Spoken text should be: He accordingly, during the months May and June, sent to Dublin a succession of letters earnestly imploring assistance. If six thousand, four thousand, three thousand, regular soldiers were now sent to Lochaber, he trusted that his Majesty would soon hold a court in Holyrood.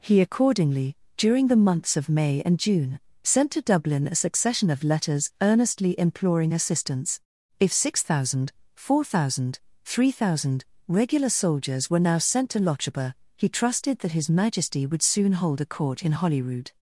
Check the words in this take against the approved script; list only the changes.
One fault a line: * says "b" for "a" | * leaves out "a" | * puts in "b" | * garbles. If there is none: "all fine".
* puts in "of"